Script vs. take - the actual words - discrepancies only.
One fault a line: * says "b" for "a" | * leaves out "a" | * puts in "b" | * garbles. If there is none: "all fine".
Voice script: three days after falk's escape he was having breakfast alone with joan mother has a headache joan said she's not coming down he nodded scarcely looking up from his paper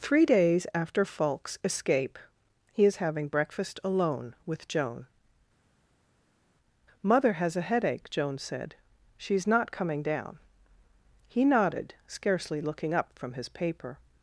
* says "is" for "was"